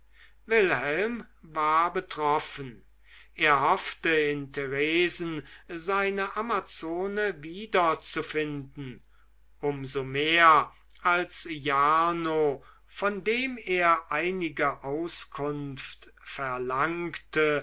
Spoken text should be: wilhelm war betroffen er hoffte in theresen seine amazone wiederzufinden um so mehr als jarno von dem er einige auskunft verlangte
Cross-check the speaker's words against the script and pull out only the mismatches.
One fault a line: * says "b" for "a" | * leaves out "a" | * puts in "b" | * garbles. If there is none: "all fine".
all fine